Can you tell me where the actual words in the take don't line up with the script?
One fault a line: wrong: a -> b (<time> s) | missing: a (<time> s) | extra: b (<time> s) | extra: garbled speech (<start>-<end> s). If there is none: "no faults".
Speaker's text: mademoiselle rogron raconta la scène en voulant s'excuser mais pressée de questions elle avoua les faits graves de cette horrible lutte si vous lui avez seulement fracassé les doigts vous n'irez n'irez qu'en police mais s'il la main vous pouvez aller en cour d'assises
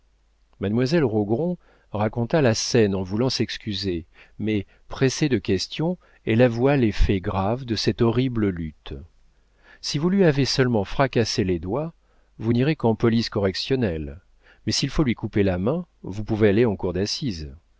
missing: n'irez (12.7 s)
extra: correctionnelle (13.3 s)
extra: faut lui couper (14.9 s)